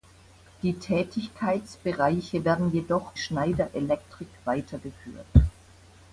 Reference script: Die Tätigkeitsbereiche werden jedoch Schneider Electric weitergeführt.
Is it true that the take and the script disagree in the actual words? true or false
false